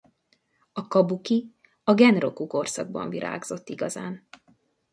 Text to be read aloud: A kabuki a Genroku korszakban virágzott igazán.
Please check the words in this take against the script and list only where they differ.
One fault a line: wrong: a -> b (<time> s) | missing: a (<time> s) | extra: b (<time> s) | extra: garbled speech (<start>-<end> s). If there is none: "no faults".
no faults